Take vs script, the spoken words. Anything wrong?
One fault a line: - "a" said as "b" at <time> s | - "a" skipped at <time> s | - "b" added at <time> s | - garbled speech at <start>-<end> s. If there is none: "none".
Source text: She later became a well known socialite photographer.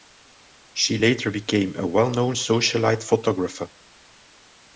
none